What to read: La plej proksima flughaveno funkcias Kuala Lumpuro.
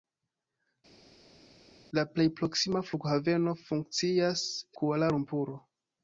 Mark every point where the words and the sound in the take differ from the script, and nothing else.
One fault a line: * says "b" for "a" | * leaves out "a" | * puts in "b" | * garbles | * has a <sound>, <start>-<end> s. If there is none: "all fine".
all fine